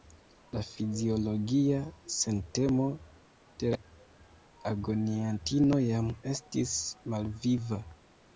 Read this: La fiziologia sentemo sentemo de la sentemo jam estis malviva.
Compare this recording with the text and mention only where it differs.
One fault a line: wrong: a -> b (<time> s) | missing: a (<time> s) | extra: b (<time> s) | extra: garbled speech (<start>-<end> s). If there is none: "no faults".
missing: sentemo (2.9 s)
wrong: sentemo -> agoniantino (4.7 s)